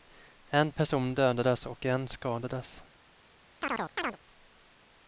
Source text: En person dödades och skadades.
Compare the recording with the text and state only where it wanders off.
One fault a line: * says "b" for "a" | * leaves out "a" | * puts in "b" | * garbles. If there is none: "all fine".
* puts in "en"